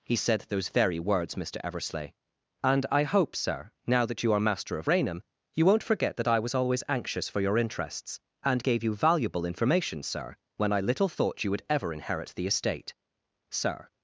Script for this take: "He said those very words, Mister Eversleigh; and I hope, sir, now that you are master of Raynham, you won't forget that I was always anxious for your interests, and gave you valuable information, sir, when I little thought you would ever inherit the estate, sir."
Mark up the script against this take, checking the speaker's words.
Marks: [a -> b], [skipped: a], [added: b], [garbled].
"He said those very words, Mister Eversleigh; and I hope, sir, now that you are master of Raynham, you won't forget that I was always anxious for your interests, and gave you valuable information, sir, when I little thought you would ever inherit the estate, sir."